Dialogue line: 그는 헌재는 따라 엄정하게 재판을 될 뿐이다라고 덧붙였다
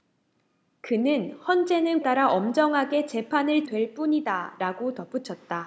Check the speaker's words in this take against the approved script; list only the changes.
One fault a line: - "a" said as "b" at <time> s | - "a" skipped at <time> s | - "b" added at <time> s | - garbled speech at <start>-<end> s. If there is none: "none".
none